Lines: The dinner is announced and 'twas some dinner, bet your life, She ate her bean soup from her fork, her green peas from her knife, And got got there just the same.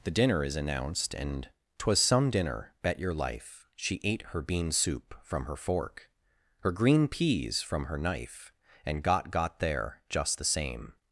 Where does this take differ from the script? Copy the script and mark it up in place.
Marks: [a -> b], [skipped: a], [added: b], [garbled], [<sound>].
The dinner is announced and 'twas some dinner, bet your life, She ate her bean soup from her fork, her green peas from her knife, And got got there just the same.